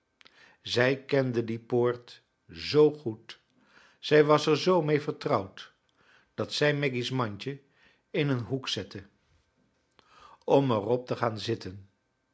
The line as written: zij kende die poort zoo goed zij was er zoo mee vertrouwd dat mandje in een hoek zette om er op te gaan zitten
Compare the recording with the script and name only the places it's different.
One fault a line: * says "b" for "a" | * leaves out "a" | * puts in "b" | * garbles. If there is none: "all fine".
* puts in "zij maggy's"